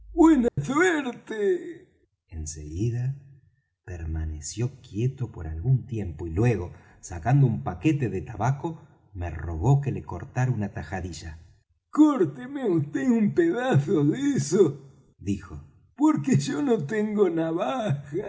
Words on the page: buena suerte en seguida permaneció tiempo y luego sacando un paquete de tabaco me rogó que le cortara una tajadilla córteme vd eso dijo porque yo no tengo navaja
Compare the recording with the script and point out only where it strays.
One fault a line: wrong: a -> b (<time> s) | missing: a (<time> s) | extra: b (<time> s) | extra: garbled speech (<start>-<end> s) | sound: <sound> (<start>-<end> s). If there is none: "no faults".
sound: dropout (0.5-0.6 s)
extra: quieto por algún (4.8 s)
extra: un pedazo de (13.1 s)